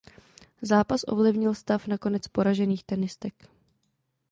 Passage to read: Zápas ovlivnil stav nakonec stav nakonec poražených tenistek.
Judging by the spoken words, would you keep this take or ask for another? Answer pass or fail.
fail